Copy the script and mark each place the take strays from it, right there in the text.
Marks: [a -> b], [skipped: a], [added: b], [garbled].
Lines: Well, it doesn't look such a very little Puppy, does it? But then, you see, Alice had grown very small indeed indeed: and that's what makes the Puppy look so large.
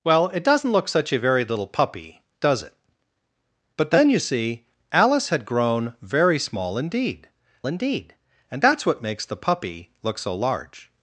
Well, it doesn't look such a very little Puppy, does it? But then, you see, Alice had grown very small indeed indeed: and that's what makes the Puppy look so large.